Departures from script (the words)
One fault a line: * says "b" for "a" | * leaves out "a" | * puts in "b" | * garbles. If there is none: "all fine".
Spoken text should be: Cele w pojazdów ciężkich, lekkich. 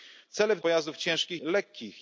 all fine